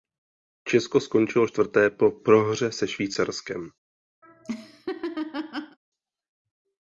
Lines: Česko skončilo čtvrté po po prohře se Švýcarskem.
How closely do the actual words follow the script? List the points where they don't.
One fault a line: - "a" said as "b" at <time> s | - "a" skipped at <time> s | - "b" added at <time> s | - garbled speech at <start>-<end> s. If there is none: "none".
- "po" skipped at 2.1 s